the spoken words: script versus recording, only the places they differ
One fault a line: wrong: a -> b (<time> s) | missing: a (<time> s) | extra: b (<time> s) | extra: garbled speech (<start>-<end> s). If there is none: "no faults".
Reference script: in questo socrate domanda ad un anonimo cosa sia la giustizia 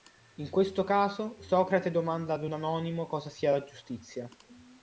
extra: caso (0.8 s)